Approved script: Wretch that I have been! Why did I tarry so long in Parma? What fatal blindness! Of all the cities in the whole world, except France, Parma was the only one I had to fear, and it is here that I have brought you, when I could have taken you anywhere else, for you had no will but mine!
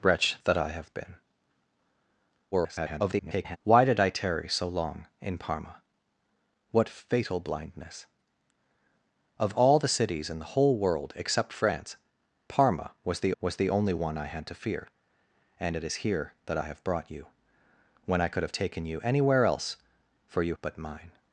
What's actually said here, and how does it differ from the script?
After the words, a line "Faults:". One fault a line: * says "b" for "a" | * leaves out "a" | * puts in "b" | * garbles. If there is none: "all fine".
Wretch that I have been! [garbled] Why did I tarry so long in Parma? What fatal blindness! Of all the cities in the whole world, except France, Parma was the was the only one I had to fear, and it is here that I have brought you, when I could have taken you anywhere else, for you but mine!
Faults:
* garbles
* puts in "was the"
* leaves out "had no will"